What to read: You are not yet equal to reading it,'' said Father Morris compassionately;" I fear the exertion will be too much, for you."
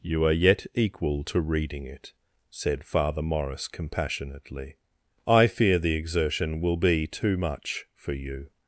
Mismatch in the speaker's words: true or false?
true